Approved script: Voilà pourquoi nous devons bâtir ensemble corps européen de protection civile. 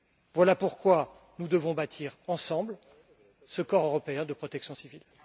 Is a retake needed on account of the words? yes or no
yes